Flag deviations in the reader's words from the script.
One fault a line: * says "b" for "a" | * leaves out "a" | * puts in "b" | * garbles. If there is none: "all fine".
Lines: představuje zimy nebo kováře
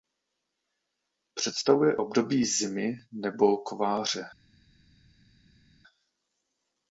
* puts in "období"